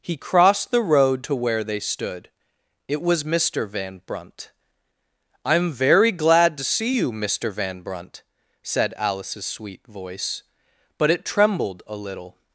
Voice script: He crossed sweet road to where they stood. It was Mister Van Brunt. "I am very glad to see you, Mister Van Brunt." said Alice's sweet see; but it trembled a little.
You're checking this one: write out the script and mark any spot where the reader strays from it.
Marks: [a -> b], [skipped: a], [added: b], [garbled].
He crossed [sweet -> the] road to where they stood. It was Mister Van Brunt. "I am very glad to see you, Mister Van Brunt." said Alice's sweet [see; -> voice] but it trembled a little.